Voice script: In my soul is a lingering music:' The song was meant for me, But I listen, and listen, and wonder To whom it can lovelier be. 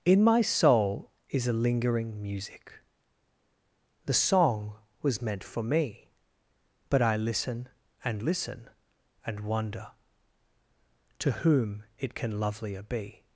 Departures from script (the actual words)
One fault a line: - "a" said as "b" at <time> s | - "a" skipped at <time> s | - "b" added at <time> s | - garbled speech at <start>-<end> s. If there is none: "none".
none